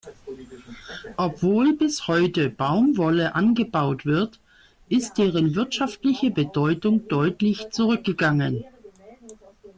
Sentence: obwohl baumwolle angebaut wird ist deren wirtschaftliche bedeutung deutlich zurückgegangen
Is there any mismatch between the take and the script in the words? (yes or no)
yes